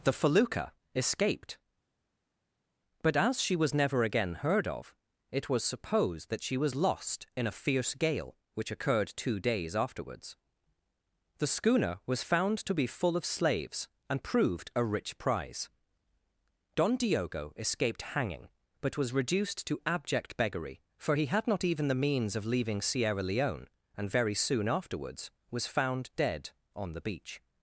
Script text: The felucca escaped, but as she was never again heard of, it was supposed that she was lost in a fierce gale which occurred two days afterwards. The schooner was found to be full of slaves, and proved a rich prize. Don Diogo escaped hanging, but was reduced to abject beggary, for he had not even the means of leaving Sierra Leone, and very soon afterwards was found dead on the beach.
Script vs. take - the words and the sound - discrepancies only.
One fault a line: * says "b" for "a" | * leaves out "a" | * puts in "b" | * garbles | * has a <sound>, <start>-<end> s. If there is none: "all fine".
all fine